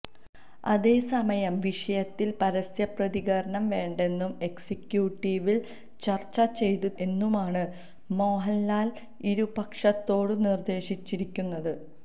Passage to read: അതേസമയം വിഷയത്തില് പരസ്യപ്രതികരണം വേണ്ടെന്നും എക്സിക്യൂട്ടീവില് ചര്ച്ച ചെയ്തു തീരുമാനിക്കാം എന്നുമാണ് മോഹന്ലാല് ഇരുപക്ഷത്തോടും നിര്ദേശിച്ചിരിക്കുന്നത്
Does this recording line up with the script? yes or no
no